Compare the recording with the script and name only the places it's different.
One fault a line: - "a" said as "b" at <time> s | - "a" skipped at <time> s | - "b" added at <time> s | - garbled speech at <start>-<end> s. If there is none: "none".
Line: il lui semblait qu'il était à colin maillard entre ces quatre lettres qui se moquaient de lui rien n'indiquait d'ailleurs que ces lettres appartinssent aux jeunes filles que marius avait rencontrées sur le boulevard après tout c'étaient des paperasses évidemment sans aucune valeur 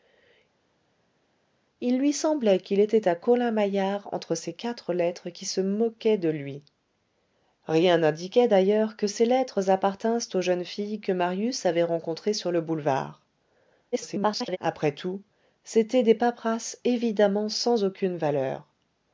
- garbled speech at 13.9-14.6 s